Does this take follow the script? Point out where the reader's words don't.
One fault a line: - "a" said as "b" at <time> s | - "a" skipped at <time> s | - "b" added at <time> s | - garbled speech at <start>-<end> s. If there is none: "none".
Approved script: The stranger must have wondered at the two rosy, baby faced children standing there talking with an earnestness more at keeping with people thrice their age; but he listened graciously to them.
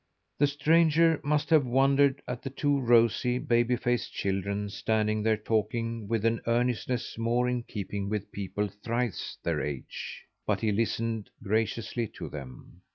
- "at" said as "in" at 7.5 s